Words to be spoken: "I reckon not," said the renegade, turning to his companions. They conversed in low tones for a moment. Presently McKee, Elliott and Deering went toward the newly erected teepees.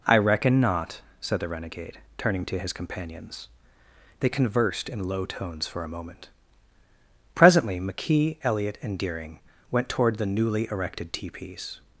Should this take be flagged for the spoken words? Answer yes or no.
no